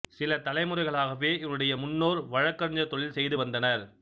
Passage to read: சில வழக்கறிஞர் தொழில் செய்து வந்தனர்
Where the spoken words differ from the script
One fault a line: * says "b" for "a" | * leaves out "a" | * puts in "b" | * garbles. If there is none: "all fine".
* puts in "தலைமுறைகளாகவே இவருடைய முன்னோர்"